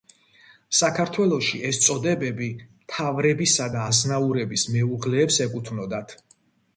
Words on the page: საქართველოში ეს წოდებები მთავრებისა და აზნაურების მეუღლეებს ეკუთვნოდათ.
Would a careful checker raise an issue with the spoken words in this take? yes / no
no